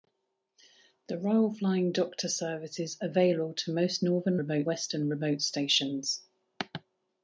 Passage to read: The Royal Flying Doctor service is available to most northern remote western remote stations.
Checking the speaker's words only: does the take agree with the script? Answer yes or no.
yes